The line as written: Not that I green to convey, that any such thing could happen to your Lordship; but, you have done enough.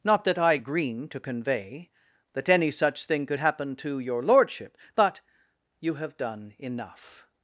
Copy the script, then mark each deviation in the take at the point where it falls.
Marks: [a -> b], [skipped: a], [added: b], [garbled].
Not that I green to convey, that any such thing could happen to your Lordship; but, you have done enough.